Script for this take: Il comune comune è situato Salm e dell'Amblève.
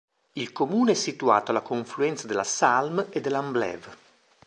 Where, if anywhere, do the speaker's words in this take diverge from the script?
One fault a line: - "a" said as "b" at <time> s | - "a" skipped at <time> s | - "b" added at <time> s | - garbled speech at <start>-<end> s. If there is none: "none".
- "comune" skipped at 0.9 s
- "alla confluenza della" added at 1.5 s